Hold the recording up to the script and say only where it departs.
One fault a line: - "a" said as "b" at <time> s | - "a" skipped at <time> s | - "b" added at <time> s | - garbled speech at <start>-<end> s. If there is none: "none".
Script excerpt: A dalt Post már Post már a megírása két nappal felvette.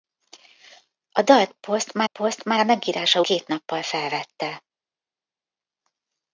none